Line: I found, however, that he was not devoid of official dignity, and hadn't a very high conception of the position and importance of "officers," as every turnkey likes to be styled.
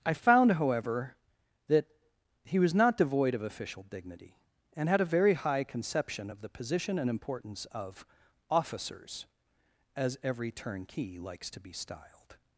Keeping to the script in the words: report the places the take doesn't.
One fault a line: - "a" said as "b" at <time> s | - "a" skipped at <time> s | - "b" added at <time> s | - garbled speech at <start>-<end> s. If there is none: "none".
- "hadn't" said as "had" at 4.9 s